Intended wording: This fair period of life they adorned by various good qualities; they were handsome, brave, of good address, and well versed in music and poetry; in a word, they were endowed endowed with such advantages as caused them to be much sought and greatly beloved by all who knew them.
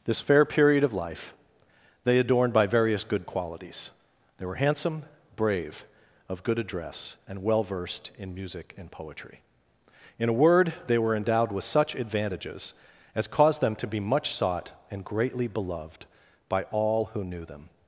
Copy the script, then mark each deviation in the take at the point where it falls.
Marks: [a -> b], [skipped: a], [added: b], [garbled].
This fair period of life they adorned by various good qualities; they were handsome, brave, of good address, and well versed in music and poetry; in a word, they were endowed [skipped: endowed] with such advantages as caused them to be much sought and greatly beloved by all who knew them.